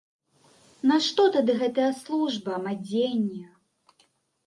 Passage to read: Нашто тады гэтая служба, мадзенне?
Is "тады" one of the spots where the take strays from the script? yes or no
no